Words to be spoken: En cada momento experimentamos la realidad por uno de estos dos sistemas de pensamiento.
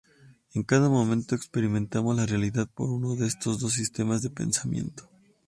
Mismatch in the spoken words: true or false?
false